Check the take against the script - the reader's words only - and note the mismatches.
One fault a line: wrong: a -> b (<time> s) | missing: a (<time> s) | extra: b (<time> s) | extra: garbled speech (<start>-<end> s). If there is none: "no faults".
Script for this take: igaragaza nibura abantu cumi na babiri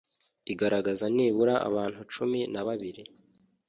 no faults